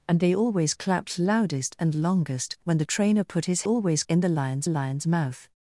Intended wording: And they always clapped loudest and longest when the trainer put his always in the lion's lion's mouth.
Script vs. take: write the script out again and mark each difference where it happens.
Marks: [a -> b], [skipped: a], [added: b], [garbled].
And they always clapped loudest and longest when the trainer put his always in the lion's lion's mouth.